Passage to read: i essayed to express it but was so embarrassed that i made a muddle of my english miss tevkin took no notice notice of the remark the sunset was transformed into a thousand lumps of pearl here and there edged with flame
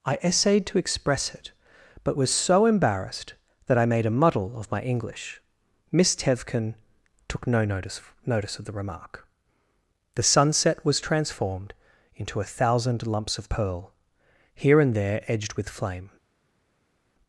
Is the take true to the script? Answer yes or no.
yes